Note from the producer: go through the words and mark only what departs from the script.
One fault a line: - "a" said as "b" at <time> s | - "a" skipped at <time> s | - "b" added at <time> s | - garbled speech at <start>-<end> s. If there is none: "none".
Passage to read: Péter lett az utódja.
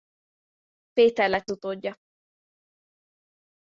- "az" skipped at 1.5 s